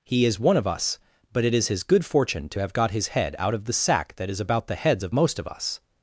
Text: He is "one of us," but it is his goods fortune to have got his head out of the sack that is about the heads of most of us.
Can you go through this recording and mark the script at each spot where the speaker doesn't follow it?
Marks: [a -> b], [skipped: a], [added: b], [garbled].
He is "one of us," but it is his [goods -> good] fortune to have got his head out of the sack that is about the heads of most of us.